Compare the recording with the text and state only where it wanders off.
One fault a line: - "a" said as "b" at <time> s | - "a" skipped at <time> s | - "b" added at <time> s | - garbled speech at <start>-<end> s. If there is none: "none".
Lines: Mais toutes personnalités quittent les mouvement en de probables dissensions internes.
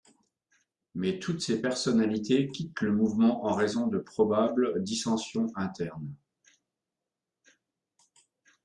- "ces" added at 1.4 s
- "les" said as "le" at 2.8 s
- "raison" added at 3.5 s